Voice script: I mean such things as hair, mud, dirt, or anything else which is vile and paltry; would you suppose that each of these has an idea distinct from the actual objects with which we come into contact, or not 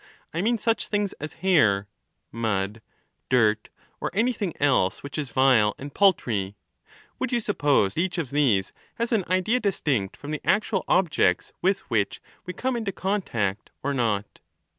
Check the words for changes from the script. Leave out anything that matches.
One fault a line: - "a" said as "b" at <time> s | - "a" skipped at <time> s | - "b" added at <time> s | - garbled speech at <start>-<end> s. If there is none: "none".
- "that" skipped at 8.0 s